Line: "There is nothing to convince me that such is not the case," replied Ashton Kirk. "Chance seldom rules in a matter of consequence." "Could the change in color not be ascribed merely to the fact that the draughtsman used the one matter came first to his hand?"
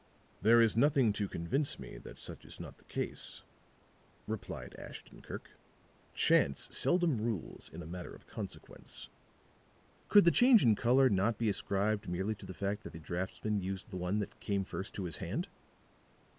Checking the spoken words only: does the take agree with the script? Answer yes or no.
no